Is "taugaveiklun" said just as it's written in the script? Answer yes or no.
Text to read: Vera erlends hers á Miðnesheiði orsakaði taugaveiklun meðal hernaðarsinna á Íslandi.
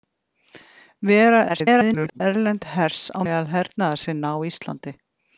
no